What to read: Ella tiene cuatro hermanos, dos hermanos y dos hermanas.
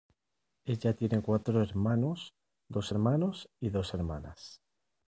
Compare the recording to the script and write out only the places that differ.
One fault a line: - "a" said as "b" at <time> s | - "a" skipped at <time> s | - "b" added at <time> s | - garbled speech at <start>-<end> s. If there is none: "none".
none